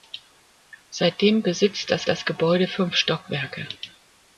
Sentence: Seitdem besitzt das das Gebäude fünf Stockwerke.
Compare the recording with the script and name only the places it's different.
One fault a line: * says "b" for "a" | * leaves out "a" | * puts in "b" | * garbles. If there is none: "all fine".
all fine